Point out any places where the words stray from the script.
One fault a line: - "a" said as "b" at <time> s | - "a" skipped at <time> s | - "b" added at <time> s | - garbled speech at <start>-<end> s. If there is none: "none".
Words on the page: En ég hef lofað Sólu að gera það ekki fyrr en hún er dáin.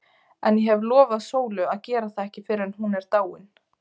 none